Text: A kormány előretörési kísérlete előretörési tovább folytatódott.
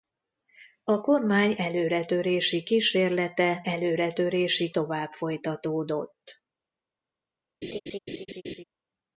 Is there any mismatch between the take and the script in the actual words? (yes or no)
no